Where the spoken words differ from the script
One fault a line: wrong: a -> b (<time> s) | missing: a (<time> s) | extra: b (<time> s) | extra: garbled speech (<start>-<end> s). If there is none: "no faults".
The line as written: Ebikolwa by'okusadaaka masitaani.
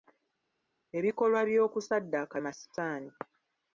no faults